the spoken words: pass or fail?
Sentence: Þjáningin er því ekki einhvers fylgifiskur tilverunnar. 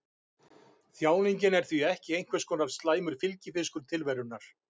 fail